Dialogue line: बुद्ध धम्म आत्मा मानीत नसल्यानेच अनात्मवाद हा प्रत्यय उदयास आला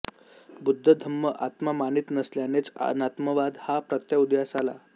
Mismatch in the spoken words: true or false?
false